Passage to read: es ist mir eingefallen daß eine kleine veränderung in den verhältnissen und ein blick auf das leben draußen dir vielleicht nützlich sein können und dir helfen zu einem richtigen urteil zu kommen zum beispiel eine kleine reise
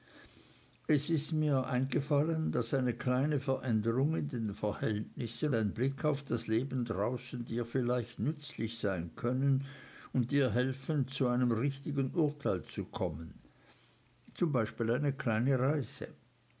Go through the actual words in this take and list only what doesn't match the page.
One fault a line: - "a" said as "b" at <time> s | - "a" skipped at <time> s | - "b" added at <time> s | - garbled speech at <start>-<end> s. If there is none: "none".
- "und" skipped at 5.5 s